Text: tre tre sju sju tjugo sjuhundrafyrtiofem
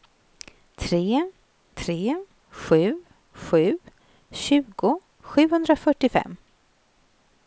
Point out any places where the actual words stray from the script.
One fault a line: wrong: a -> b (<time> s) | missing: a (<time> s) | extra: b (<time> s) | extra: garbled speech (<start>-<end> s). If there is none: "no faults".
no faults